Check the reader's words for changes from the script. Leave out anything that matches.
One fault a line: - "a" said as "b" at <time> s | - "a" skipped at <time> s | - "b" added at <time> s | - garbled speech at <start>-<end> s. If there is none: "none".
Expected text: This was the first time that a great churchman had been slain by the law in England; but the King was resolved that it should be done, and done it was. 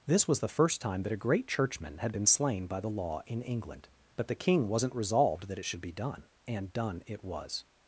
- "was" said as "wasn't" at 4.7 s